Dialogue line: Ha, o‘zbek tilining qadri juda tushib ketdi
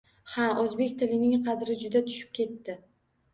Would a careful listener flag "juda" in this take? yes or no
no